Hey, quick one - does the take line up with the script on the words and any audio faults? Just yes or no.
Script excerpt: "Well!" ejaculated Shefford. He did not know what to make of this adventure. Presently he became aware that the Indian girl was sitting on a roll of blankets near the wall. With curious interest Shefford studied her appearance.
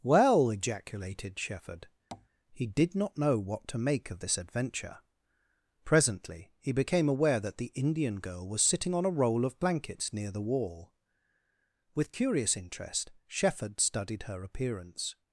no